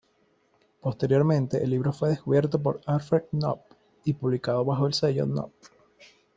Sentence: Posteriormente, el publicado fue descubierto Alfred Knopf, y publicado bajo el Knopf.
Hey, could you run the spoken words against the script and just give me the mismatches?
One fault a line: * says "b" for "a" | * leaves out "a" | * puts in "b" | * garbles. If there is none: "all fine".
* says "libro" for "publicado"
* puts in "por"
* puts in "sello"